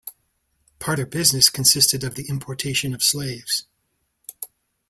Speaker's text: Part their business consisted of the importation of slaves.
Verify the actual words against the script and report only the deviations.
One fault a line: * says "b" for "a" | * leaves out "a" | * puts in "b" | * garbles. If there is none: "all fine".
all fine